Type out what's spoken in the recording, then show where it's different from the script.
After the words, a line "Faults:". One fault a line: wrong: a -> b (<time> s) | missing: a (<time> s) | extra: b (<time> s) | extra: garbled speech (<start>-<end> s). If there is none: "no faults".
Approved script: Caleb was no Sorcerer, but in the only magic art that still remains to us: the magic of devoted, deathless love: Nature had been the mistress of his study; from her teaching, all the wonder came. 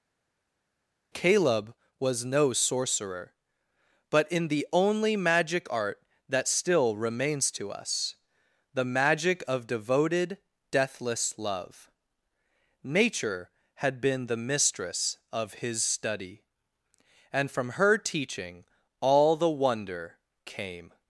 Caleb was no Sorcerer, but in the only magic art that still remains to us: the magic of devoted, deathless love: Nature had been the mistress of his study; and from her teaching, all the wonder came.
Faults:
extra: and (17.3 s)